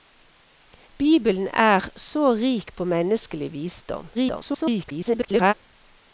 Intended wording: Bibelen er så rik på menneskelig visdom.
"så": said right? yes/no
yes